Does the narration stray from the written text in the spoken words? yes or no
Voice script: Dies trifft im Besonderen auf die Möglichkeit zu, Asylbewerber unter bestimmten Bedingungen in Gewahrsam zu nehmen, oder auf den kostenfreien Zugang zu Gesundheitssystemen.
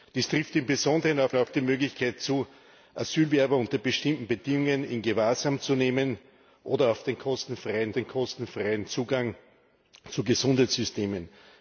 yes